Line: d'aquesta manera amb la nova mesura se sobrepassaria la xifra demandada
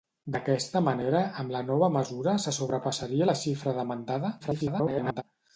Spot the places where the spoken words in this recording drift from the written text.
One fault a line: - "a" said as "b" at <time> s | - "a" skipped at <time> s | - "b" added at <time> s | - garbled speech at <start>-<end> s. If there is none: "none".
- garbled speech at 4.4-5.2 s